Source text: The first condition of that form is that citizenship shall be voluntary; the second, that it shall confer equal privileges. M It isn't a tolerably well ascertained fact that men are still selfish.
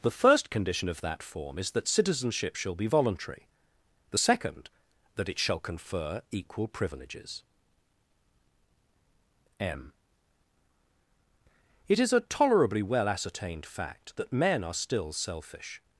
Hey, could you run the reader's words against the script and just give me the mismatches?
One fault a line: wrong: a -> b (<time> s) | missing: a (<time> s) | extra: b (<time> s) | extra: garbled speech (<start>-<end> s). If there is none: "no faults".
wrong: isn't -> is (12.0 s)